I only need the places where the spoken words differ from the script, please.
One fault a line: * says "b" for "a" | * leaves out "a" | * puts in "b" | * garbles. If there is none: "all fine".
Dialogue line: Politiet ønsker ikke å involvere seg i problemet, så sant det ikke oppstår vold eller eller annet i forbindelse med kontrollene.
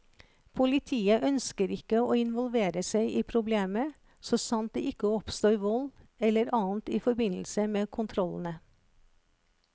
* leaves out "eller"